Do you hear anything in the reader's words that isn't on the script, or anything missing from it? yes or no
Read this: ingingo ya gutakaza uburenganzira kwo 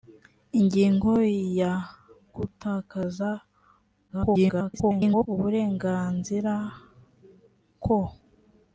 yes